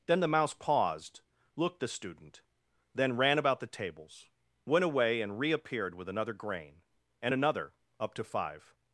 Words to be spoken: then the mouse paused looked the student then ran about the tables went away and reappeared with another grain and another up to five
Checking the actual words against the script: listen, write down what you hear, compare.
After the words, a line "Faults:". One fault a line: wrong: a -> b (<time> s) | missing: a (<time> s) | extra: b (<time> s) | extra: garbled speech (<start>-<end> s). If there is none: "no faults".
then the mouse paused looked the student then ran about the tables went away and reappeared with another grain and another up to five
Faults:
no faults